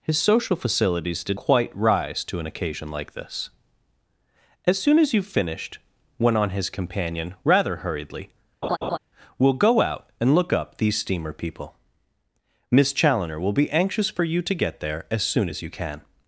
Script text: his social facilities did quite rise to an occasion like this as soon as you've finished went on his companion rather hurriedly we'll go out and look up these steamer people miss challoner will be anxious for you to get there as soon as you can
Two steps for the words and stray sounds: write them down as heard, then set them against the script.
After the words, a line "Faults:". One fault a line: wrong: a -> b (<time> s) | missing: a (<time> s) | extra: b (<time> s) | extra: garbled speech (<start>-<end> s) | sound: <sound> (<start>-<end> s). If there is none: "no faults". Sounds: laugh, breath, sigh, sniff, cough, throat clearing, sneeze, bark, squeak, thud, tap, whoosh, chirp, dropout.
his social facilities did quite rise to an occasion like this as soon as you've finished went on his companion rather hurriedly we'll go out and look up these steamer people miss challoner will be anxious for you to get there as soon as you can
Faults:
sound: laugh (8.6-9.0 s)